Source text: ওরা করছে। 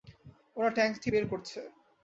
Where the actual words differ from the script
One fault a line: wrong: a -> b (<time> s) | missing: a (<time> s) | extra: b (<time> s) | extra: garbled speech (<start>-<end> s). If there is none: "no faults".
extra: ট্যাঙ্কটি বের (0.8 s)